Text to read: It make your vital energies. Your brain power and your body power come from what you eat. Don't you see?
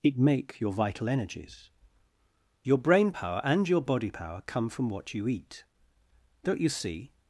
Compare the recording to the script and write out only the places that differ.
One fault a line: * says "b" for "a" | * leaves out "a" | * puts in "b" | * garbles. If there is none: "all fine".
all fine